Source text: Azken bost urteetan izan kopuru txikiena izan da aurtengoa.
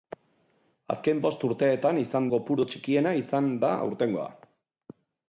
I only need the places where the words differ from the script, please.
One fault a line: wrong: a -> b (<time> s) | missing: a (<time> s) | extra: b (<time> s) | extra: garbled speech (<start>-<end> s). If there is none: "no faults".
no faults